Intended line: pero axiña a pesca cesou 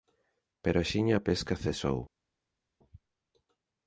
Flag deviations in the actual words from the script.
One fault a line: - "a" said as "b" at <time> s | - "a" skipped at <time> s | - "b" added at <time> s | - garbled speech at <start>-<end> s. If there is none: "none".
none